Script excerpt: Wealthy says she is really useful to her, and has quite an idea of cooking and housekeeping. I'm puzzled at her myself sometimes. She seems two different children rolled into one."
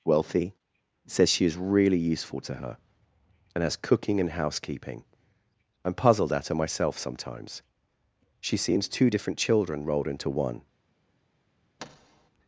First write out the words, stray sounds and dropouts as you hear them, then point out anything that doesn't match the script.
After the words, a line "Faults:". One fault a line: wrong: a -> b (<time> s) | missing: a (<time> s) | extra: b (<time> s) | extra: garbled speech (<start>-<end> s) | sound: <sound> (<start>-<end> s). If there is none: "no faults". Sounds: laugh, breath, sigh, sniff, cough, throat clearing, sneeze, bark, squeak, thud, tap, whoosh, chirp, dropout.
Wealthy says she is really useful to her, and has cooking and housekeeping. I'm puzzled at her myself sometimes. She seems two different children rolled into one."
Faults:
missing: quite an idea of (3.8 s)
sound: thud (11.8-12.3 s)